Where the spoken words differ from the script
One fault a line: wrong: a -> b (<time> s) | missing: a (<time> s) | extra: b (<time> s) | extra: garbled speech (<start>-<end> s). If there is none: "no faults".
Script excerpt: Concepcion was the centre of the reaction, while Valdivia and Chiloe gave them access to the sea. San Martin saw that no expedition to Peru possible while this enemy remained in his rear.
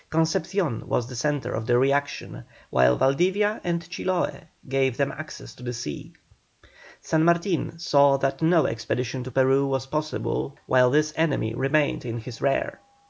extra: was (9.7 s)